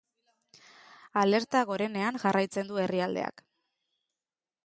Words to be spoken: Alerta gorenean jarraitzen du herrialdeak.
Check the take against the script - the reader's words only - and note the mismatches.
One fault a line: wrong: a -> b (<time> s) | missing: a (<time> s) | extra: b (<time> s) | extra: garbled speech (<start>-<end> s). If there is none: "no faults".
no faults